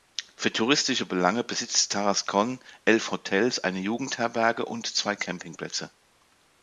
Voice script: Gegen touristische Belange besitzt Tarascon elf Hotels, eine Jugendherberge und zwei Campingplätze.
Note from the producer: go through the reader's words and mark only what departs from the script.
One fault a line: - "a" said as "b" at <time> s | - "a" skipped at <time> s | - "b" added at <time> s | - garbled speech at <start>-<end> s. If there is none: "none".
- "Gegen" said as "Für" at 0.3 s